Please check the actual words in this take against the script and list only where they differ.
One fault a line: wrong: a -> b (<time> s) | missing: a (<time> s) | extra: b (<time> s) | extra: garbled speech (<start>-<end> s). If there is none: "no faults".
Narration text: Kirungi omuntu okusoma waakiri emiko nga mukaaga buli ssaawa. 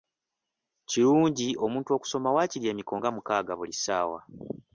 no faults